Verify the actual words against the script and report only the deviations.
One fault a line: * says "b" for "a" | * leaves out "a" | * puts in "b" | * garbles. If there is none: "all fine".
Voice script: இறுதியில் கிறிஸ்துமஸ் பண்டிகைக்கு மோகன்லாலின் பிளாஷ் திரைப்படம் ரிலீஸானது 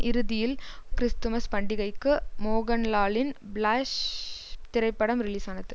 all fine